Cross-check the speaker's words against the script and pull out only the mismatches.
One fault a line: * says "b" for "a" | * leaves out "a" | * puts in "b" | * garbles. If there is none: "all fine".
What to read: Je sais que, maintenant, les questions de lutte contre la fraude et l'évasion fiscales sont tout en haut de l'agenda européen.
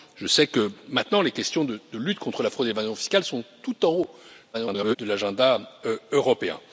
* garbles